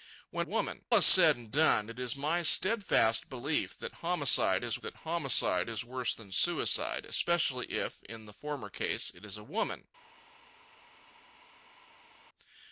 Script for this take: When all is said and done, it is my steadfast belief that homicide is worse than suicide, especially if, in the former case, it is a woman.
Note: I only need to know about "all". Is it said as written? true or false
false